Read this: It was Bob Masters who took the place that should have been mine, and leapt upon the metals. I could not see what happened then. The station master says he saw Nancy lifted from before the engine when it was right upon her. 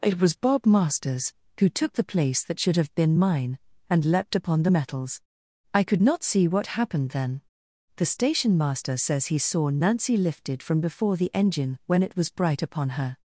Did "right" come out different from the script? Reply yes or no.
yes